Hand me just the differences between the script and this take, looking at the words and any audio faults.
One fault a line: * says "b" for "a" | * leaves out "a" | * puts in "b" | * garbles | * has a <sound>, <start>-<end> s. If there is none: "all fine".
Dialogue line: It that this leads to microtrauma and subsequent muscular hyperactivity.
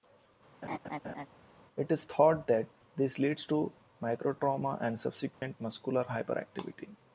* has a laugh, 0.6-1.3 s
* puts in "is thought"
* has a dropout, 5.3-5.4 s